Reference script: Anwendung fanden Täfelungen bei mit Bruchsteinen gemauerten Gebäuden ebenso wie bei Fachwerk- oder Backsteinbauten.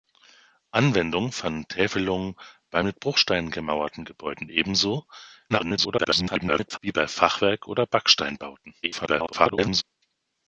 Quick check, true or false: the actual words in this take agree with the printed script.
false